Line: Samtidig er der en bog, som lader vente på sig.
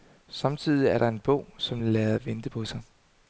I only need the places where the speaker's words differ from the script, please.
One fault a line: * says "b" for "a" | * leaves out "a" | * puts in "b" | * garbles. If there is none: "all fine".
all fine